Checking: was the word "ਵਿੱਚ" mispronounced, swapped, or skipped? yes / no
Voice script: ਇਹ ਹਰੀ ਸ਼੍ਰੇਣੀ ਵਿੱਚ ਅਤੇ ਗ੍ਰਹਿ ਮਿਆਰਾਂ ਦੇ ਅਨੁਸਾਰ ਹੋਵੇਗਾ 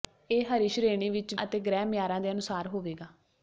no